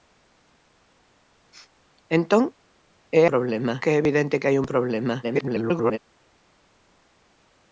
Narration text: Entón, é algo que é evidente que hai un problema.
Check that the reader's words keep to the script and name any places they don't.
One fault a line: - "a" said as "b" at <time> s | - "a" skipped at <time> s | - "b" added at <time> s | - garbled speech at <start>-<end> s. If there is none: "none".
- "algo" said as "problema" at 3.3 s
- garbled speech at 5.2-6.0 s